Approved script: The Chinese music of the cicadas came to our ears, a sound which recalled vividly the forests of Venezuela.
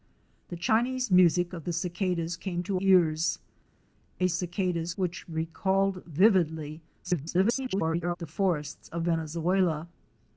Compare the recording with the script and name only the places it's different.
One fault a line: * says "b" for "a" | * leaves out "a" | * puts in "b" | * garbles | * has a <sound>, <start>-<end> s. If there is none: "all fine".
* leaves out "our"
* says "cicadas" for "sound"
* garbles